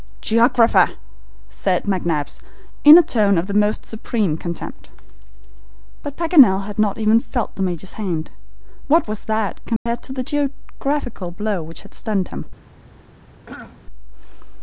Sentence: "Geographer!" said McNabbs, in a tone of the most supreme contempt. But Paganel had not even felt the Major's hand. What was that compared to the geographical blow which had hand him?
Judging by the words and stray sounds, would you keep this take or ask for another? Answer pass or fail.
fail